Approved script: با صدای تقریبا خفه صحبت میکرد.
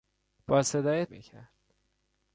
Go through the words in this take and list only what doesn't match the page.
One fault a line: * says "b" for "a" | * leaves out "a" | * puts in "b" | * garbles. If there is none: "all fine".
* leaves out "تقریبا خفه صحبت"